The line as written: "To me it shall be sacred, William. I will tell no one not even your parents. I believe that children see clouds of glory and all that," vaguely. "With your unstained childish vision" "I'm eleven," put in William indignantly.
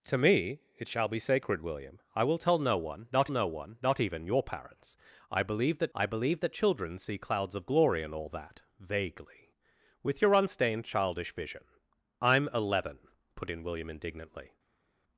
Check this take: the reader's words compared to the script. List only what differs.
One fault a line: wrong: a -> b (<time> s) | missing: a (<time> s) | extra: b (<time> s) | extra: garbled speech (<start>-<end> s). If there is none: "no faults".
extra: no one not (3.3 s)
extra: I believe that (5.9 s)